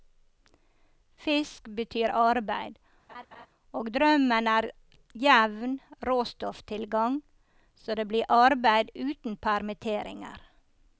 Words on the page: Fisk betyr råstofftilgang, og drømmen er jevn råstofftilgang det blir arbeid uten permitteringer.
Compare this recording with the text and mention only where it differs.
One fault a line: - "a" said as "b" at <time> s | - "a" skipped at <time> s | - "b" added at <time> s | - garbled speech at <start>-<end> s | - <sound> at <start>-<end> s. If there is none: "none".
- "råstofftilgang" said as "arbeid" at 2.2 s
- laugh at 3.1-3.5 s
- "så" added at 7.8 s